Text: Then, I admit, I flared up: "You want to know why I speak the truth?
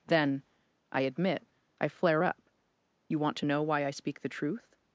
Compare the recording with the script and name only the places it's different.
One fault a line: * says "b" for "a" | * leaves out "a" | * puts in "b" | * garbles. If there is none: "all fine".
* says "flare" for "flared"